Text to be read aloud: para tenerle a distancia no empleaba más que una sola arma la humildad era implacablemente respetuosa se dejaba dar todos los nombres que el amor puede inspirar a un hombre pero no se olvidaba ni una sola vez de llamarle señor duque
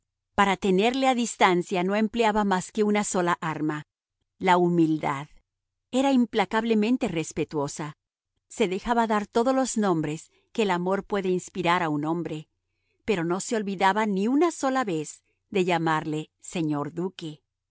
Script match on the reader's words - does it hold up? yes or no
yes